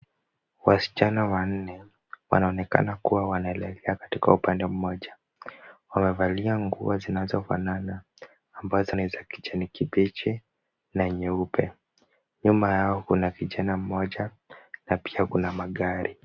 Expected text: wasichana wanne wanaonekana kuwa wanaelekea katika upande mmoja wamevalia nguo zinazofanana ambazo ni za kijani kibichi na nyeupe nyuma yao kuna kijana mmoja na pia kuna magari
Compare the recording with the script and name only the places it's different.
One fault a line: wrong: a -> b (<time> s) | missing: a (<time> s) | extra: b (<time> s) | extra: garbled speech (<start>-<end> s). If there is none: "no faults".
no faults